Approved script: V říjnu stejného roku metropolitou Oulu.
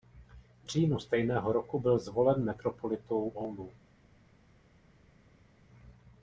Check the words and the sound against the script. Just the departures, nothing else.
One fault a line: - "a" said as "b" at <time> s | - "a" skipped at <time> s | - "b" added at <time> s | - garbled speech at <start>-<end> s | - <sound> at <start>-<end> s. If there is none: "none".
- "byl zvolen" added at 1.8 s